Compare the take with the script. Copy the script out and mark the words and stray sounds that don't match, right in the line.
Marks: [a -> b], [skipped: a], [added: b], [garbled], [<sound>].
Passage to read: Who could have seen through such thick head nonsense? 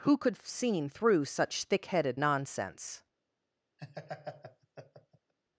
Who could have seen through such thick [head -> headed] nonsense? [laugh]